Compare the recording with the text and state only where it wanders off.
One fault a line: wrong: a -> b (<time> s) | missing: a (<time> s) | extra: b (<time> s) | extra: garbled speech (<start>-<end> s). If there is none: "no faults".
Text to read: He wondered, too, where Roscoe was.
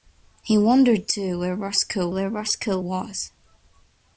extra: where Roscoe (2.1 s)